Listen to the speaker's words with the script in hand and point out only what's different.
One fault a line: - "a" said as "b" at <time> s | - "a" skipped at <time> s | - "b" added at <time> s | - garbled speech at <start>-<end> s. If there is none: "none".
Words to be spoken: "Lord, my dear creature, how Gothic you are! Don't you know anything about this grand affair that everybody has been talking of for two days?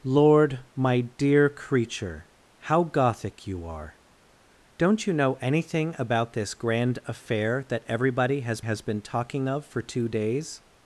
- "has" added at 8.6 s